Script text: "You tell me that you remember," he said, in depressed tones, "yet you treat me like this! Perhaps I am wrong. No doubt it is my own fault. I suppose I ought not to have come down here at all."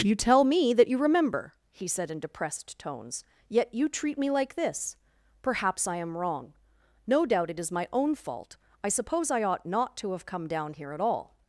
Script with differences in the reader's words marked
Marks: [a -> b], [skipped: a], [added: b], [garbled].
"You tell me that you remember," he said, in depressed tones, "yet you treat me like this! Perhaps I am wrong. No doubt it is my own fault. I suppose I ought not to have come down here at all."